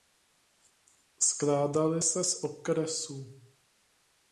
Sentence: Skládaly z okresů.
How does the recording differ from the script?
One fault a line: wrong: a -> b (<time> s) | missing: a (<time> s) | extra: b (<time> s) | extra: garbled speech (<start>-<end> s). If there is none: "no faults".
extra: se (2.0 s)